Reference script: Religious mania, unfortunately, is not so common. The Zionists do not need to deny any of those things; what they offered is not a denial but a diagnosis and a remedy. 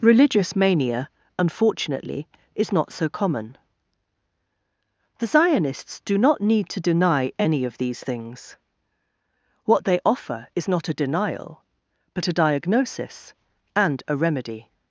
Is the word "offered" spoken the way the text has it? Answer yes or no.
no